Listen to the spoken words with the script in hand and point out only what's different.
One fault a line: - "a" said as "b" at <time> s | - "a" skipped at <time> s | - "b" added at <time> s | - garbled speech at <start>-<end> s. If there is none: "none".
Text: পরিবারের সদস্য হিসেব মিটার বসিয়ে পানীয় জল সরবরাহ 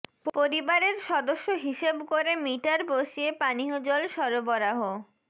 - "করে" added at 2.1 s